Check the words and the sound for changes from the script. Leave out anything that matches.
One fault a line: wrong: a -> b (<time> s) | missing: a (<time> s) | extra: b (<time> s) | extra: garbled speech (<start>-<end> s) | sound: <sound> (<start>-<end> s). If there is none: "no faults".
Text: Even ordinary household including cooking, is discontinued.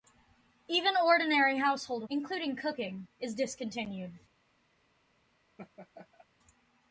sound: laugh (5.6-6.3 s)